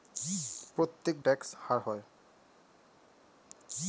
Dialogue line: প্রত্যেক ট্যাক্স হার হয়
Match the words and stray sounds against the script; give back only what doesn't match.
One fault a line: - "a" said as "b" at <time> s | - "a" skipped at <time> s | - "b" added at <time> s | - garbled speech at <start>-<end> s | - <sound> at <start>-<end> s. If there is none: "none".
none